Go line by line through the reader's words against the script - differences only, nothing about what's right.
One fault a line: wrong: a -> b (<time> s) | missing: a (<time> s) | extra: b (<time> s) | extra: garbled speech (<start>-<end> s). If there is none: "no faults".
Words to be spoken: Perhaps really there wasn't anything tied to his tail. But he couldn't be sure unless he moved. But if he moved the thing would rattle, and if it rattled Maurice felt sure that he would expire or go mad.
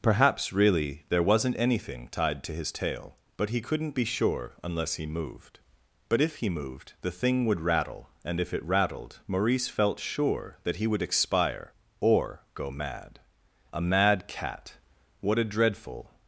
extra: A mad cat What a dreadful (13.7 s)